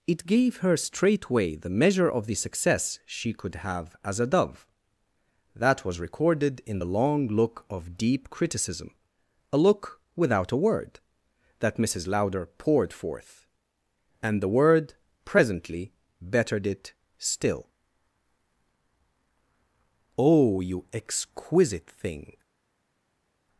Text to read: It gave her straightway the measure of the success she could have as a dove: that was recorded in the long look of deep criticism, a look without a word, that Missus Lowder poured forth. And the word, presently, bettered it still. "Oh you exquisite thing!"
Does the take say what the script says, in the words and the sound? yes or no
yes